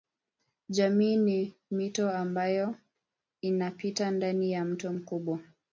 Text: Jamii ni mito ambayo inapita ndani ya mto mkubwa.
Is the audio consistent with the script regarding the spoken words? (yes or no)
yes